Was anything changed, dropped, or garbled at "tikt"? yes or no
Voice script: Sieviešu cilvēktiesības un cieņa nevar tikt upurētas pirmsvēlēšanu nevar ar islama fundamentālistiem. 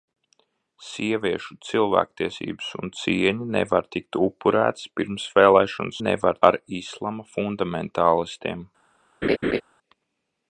no